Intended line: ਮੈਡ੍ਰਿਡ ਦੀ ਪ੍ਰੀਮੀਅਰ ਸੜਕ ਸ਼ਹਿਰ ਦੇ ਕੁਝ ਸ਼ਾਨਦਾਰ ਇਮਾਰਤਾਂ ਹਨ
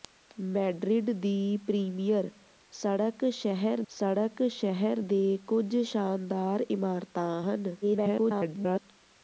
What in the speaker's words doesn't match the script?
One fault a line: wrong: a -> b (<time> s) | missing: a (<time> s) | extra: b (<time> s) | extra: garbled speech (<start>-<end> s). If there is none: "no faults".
extra: ਸੜਕ ਸ਼ਹਿਰ (3.9 s)
extra: garbled speech (7.8-8.8 s)